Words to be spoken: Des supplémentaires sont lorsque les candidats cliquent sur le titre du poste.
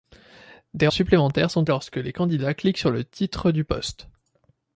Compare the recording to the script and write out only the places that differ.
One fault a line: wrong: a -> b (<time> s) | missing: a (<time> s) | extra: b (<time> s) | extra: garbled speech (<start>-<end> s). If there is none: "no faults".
no faults